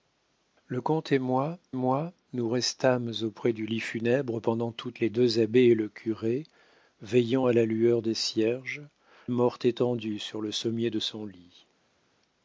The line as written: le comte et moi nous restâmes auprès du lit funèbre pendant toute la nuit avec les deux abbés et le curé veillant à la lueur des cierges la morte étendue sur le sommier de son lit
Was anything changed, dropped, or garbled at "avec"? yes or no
yes